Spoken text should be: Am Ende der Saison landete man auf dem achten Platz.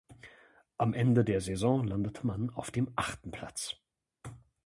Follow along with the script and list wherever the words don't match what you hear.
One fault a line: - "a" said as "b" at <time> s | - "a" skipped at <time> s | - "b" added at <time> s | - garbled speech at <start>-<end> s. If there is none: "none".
none